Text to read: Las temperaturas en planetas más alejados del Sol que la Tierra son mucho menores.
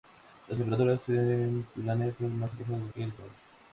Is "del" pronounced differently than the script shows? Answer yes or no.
yes